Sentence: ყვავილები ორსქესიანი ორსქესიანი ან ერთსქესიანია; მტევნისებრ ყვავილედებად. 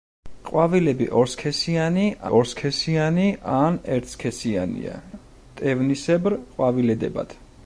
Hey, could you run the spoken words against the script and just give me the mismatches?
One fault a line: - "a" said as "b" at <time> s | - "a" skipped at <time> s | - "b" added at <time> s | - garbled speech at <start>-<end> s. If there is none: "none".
none